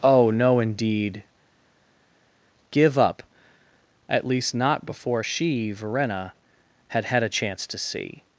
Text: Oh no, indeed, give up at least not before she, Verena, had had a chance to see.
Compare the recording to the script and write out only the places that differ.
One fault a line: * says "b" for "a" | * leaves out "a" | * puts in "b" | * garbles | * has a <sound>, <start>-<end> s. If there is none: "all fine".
all fine